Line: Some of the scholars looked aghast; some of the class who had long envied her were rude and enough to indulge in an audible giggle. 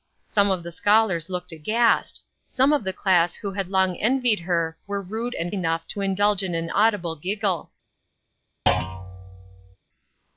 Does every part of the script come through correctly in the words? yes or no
yes